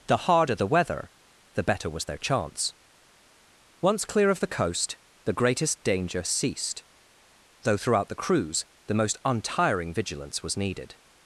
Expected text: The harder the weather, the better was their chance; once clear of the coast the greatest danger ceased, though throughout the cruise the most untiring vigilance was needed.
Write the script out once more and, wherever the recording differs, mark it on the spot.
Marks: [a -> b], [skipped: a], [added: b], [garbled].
The harder the weather, the better was their chance; once clear of the coast the greatest danger ceased, though throughout the cruise the most untiring vigilance was needed.